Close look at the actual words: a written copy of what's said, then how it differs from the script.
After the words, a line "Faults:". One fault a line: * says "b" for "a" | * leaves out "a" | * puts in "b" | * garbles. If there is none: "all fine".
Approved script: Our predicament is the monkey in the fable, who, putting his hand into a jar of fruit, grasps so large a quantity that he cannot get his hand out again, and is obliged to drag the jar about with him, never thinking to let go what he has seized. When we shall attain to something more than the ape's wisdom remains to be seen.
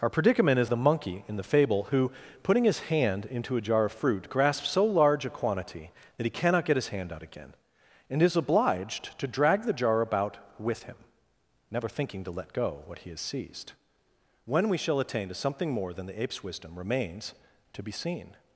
Our predicament is the monkey in the fable, who, putting his hand into a jar of fruit, grasps so large a quantity that he cannot get his hand out again, and is obliged to drag the jar about with him, never thinking to let go what he has seized. When we shall attain to something more than the ape's wisdom remains to be seen.
Faults:
all fine